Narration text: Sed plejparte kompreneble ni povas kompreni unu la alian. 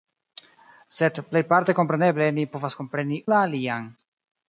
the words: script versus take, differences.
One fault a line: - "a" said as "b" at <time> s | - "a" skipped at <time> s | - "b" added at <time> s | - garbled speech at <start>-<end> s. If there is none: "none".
- "unu" skipped at 3.2 s